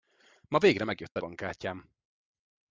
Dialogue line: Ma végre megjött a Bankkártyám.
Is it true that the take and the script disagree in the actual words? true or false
false